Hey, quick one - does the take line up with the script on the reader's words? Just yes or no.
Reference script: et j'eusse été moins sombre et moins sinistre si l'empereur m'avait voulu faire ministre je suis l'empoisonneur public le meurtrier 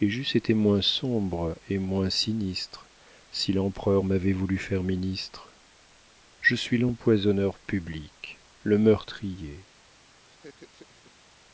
yes